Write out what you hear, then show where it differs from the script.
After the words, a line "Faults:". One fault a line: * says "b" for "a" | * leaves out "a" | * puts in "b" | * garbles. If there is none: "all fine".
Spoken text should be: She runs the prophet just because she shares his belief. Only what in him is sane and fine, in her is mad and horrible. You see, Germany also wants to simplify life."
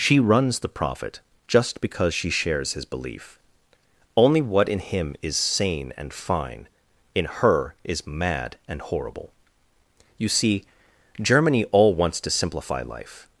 She runs the prophet just because she shares his belief. Only what in him is sane and fine, in her is mad and horrible. You see, Germany all wants to simplify life."
Faults:
* says "all" for "also"